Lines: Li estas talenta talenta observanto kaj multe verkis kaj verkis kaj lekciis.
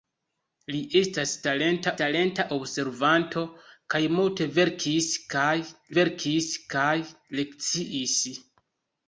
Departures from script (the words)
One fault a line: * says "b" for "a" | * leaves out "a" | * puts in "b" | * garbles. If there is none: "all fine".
all fine